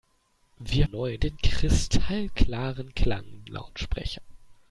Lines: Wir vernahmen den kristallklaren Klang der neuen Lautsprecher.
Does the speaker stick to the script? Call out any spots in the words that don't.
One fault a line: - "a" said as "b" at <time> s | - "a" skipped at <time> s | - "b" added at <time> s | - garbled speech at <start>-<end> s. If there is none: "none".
- "vernahmen" said as "neuen" at 0.8 s
- "der neuen" skipped at 3.5 s